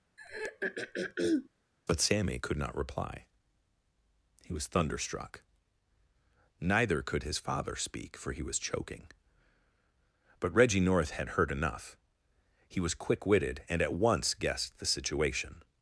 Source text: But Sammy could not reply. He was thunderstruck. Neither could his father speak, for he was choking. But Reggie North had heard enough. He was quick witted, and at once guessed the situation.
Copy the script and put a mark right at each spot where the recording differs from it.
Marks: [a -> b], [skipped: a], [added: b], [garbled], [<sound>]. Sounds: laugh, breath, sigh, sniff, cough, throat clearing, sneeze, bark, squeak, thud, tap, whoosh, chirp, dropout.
[throat clearing] But Sammy could not reply. He was thunderstruck. Neither could his father speak, for he was choking. But Reggie North had heard enough. He was quick witted, and at once guessed the situation.